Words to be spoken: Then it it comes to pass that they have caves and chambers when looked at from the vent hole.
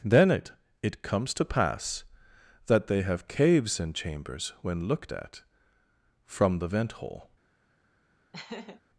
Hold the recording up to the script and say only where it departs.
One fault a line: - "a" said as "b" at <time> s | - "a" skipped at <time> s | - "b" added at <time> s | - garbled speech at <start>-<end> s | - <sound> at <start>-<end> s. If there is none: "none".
- laugh at 8.3-8.8 s